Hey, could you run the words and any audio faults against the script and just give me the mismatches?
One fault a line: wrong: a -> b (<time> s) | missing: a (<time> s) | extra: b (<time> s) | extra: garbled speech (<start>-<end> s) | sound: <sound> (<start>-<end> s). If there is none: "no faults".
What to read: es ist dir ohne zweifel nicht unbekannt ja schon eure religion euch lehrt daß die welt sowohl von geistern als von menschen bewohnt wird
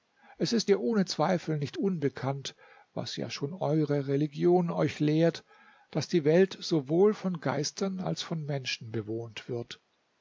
extra: was (2.9 s)